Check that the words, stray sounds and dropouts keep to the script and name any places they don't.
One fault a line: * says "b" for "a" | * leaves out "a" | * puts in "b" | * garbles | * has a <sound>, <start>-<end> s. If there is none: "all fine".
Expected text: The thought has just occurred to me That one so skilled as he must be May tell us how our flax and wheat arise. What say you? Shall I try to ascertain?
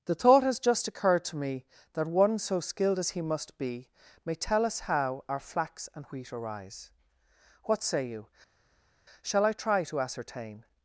all fine